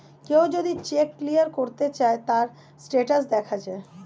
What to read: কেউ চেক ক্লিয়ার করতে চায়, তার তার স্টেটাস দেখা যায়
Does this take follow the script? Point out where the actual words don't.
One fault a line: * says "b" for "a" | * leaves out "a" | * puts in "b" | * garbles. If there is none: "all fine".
* puts in "যদি"
* leaves out "তার"